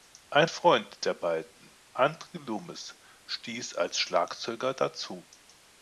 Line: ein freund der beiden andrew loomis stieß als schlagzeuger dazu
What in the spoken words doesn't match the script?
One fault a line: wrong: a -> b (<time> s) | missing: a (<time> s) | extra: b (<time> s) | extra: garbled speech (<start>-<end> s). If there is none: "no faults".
no faults